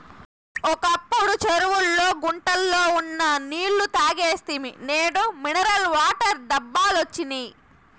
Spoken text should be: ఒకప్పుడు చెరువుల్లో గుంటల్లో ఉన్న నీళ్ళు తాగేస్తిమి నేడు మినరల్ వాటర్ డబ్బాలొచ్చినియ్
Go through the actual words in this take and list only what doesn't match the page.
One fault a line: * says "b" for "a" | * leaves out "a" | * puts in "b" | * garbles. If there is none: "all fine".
all fine